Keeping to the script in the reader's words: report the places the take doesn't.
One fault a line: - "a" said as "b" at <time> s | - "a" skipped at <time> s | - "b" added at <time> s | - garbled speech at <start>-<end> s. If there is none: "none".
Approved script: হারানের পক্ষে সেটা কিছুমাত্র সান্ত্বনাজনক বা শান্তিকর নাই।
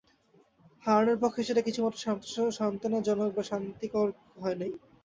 - "হয়" added at 4.4 s